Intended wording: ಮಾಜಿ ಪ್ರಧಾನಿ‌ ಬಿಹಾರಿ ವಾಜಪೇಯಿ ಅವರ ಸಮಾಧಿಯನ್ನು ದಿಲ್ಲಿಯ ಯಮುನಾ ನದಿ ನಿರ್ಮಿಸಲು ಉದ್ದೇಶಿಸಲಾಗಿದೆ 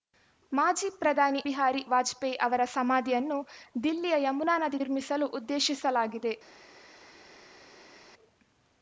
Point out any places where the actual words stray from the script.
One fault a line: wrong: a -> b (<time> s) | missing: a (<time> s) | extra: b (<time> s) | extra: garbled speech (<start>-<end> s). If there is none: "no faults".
no faults